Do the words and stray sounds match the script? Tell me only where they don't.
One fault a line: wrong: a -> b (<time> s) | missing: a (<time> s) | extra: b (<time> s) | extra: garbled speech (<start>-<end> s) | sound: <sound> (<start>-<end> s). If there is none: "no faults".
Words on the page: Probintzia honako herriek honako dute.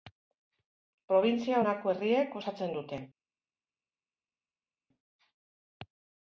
wrong: honako -> osatzen (2.4 s)